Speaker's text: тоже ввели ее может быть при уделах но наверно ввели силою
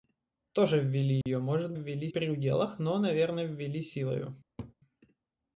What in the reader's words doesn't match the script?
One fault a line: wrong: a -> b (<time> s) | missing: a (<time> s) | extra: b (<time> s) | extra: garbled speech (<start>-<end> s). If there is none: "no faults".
wrong: быть -> ввели (1.7 s)